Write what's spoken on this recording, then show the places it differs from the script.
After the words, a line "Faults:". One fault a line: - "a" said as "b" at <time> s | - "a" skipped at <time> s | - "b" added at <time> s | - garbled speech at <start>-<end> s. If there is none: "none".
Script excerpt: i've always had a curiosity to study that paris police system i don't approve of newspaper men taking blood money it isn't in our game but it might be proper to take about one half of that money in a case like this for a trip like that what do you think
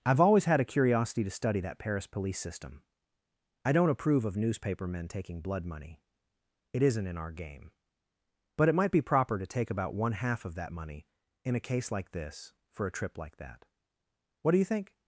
i've always had a curiosity to study that paris police system i don't approve of newspaper men taking blood money it isn't in our game but it might be proper to take about one half of that money in a case like this for a trip like that what do you think
Faults:
none